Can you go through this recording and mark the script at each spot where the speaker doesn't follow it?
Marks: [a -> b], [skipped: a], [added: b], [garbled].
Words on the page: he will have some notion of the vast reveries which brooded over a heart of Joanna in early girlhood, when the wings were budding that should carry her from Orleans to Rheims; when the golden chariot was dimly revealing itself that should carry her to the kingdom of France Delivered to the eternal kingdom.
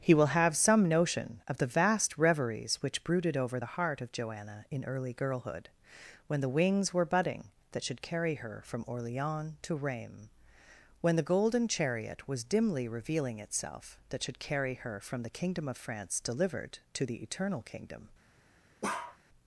he will have some notion of the vast reveries which brooded over [a -> the] heart of Joanna in early girlhood, when the wings were budding that should carry her from Orleans to Rheims; when the golden chariot was dimly revealing itself that should carry her [to -> from] the kingdom of France Delivered to the eternal kingdom.